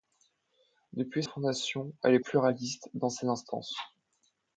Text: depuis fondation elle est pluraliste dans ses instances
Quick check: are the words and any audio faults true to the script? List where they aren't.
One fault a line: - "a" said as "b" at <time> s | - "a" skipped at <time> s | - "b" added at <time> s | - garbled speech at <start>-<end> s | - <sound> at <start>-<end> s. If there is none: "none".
none